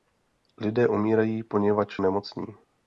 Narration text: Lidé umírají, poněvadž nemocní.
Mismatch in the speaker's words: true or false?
false